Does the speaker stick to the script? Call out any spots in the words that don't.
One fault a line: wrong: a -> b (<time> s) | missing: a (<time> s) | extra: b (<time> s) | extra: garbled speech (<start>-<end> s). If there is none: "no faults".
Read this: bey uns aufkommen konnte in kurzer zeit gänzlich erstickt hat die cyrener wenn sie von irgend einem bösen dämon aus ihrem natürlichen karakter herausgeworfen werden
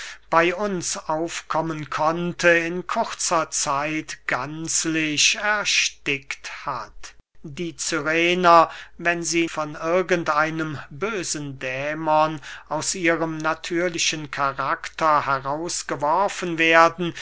no faults